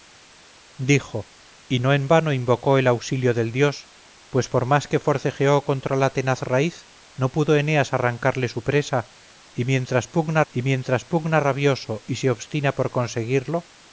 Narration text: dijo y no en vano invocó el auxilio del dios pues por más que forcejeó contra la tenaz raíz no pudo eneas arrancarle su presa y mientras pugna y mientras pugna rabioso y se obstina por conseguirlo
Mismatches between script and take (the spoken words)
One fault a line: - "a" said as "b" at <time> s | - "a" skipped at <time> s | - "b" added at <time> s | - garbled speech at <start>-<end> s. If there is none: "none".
none